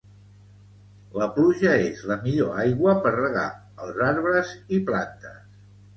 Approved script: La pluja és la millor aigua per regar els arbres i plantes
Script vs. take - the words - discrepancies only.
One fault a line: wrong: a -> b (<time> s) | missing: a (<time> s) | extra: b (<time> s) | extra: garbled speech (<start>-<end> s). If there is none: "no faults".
no faults